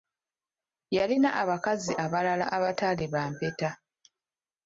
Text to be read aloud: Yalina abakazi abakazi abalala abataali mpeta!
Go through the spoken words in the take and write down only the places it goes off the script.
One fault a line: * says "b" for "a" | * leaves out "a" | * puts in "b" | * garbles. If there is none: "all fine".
* leaves out "abakazi"
* puts in "ba"